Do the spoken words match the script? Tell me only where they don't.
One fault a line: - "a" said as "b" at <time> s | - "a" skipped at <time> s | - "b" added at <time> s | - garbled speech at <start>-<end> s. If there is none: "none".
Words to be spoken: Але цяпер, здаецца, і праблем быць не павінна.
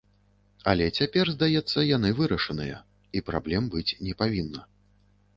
- "яны вырашаныя" added at 1.9 s